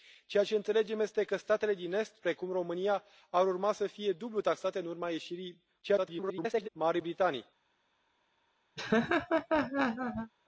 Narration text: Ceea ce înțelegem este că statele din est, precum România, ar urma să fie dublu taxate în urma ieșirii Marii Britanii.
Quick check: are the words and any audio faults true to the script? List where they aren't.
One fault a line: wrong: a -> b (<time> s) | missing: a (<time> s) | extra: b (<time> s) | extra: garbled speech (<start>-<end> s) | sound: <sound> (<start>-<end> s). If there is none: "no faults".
extra: garbled speech (5.8-6.7 s)
sound: laugh (8.8-10.3 s)